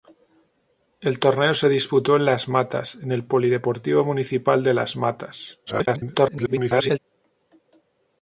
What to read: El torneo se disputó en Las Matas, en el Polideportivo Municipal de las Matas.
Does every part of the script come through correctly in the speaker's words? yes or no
no